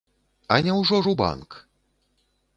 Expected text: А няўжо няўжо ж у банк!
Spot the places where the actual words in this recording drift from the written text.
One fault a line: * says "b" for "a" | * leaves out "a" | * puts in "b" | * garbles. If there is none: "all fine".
* leaves out "няўжо"